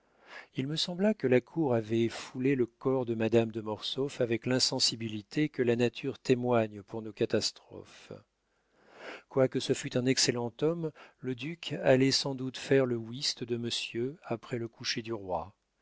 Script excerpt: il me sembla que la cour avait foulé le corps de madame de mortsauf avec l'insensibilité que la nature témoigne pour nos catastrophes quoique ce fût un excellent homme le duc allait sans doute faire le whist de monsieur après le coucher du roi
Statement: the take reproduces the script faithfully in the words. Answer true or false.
true